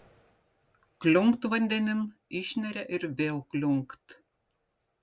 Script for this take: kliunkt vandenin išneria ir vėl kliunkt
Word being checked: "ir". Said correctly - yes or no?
yes